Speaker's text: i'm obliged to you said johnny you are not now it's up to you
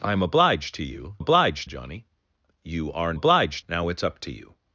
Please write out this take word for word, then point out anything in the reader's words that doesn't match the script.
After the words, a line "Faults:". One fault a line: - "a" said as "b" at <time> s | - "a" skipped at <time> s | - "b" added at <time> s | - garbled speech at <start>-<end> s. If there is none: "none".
i'm obliged to you obliged johnny you are obliged now it's up to you
Faults:
- "said" said as "obliged" at 1.2 s
- "not" said as "obliged" at 3.1 s